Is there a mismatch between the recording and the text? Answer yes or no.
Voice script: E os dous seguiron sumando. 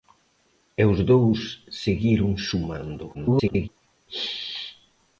yes